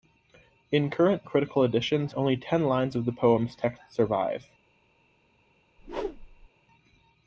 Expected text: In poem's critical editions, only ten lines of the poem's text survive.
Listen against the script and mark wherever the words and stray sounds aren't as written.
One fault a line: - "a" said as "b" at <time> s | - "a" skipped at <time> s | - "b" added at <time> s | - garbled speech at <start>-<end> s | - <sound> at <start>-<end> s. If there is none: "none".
- "poem's" said as "current" at 0.9 s
- whoosh at 5.8-6.5 s